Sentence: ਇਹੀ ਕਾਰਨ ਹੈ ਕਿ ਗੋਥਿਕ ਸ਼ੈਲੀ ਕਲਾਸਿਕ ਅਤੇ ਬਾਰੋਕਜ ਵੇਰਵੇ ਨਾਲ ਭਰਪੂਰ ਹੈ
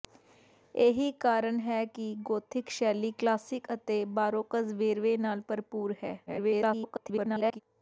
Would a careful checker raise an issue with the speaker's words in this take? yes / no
yes